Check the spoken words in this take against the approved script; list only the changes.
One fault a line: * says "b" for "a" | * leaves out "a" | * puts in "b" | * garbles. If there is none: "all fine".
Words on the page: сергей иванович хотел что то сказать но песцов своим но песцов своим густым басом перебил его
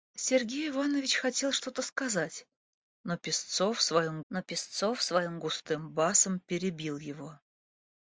all fine